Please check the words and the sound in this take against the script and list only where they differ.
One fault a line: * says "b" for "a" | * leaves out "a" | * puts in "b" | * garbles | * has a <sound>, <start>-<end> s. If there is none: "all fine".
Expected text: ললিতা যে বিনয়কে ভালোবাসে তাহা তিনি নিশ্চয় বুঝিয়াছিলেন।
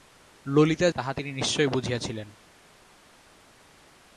* leaves out "যে বিনয়কে ভালোবাসে"